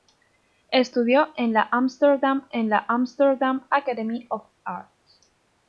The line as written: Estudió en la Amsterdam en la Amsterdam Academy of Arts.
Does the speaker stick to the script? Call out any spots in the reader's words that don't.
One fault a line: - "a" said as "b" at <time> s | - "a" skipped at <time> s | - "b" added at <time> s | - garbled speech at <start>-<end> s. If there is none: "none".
none